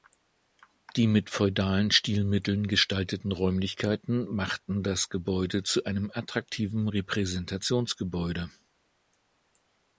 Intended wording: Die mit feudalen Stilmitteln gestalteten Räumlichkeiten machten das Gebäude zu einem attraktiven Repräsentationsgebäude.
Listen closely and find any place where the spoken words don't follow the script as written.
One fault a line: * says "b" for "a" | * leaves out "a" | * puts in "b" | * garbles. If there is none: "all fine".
all fine